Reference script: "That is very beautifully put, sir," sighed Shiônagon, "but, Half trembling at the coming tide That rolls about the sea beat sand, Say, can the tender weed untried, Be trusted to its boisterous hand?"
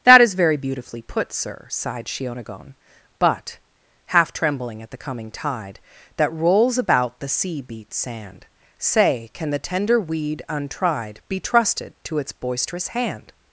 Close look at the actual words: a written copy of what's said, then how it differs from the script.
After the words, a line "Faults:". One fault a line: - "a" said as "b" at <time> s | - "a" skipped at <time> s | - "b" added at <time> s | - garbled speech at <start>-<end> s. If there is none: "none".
"That is very beautifully put, sir," sighed Shiônagon, "but, Half trembling at the coming tide That rolls about the sea beat sand, Say, can the tender weed untried, Be trusted to its boisterous hand?"
Faults:
none